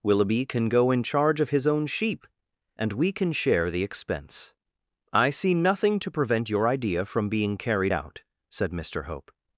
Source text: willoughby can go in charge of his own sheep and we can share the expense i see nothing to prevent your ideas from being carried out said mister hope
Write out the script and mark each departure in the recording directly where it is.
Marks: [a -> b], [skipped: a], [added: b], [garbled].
willoughby can go in charge of his own sheep and we can share the expense i see nothing to prevent your [ideas -> idea] from being carried out said mister hope